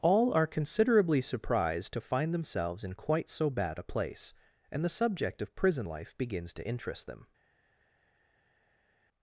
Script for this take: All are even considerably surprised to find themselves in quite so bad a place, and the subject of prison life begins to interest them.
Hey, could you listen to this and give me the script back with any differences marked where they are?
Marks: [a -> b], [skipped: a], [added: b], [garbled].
All are [skipped: even] considerably surprised to find themselves in quite so bad a place, and the subject of prison life begins to interest them.